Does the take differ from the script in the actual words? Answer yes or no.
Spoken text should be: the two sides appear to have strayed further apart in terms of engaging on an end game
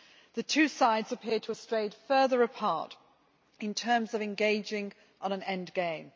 no